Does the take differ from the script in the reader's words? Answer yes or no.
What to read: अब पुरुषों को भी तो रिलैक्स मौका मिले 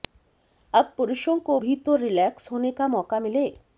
yes